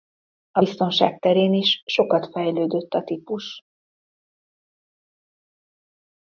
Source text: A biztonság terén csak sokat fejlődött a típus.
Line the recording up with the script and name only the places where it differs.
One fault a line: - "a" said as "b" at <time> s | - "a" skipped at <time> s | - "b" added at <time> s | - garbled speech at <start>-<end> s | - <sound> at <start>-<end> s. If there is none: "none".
- "csak" said as "is" at 1.5 s